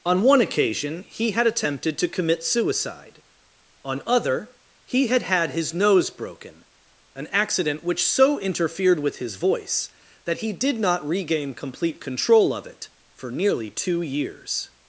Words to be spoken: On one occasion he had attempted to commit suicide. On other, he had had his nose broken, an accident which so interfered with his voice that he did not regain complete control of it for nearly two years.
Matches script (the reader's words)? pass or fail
pass